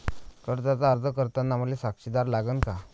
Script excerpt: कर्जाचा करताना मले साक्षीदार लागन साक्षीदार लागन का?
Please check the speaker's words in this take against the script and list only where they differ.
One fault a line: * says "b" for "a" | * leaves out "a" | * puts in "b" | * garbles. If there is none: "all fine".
* puts in "अर्ज"
* leaves out "साक्षीदार लागन"